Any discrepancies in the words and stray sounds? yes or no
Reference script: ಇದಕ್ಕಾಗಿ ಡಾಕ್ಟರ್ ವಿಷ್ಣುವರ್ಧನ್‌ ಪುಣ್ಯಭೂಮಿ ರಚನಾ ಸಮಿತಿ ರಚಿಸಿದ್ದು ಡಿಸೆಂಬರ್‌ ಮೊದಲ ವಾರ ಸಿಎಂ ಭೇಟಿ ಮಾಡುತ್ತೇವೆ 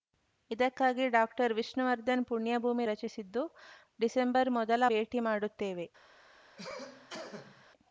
yes